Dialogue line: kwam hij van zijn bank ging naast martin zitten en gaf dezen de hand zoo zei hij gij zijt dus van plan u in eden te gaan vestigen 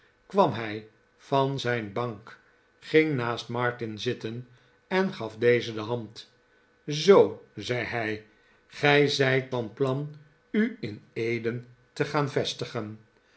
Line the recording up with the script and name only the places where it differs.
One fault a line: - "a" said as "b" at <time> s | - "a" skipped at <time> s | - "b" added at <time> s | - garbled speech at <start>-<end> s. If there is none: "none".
- "dus" skipped at 9.5 s